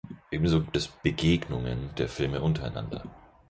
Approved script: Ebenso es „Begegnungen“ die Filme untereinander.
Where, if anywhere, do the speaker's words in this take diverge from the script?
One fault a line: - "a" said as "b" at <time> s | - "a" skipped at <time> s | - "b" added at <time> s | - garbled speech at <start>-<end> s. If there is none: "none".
- "gibt" added at 0.6 s
- "die" said as "der" at 2.0 s